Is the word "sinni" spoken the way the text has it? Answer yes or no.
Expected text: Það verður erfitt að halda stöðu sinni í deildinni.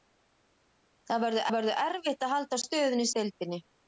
no